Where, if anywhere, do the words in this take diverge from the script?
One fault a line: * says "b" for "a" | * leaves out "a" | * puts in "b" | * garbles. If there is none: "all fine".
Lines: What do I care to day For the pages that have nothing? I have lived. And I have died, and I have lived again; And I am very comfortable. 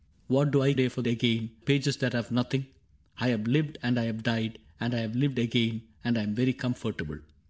* leaves out "care to"
* says "again" for "the"